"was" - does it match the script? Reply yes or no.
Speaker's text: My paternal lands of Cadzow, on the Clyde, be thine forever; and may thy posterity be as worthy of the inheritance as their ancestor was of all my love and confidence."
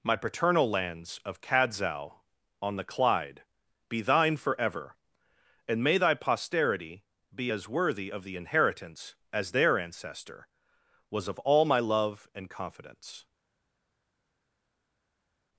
yes